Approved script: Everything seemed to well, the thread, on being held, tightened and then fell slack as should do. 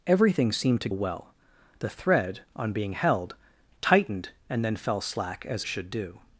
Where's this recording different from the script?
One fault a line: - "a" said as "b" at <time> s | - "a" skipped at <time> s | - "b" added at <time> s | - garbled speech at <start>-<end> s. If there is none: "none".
none